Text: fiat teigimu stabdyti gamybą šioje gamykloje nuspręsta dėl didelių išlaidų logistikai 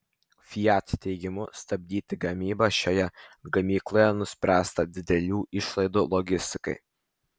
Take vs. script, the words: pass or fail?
fail